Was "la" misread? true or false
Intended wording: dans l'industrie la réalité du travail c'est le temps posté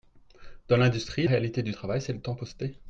true